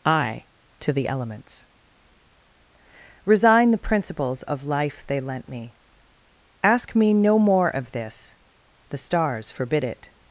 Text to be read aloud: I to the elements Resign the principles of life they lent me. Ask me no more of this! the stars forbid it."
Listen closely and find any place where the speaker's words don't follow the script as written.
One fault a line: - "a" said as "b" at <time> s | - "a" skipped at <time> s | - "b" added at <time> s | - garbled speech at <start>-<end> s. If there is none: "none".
none